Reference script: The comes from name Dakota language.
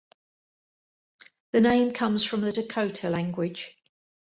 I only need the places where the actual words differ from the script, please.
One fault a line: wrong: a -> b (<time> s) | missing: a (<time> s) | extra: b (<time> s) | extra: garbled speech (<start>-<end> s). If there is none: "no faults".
extra: name (1.6 s)
wrong: name -> the (2.4 s)